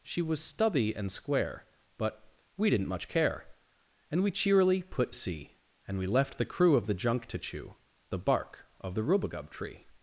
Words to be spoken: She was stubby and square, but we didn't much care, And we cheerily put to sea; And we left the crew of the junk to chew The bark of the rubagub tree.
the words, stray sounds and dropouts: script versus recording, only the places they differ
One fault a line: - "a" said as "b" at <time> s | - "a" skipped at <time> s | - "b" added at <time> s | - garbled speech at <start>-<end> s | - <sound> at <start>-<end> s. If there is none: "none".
- "to" skipped at 5.1 s